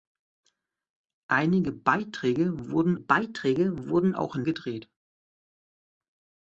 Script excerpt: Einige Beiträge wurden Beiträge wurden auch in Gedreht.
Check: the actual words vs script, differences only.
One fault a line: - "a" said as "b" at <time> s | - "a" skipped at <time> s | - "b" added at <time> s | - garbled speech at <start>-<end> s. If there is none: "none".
none